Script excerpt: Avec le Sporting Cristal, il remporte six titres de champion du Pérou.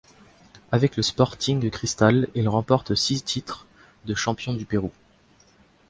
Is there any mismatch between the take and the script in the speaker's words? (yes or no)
no